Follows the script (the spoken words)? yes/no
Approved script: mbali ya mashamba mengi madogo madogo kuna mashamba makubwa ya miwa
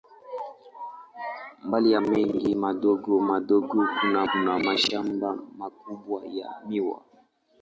no